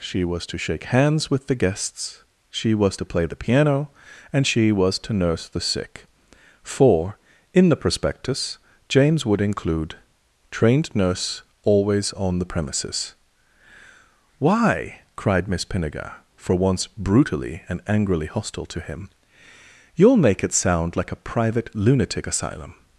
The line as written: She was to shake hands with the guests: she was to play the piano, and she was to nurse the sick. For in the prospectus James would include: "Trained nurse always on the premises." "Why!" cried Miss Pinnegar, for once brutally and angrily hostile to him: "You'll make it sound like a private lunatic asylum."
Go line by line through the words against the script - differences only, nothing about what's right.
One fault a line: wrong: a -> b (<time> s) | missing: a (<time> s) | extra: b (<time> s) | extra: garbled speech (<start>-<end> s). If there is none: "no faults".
no faults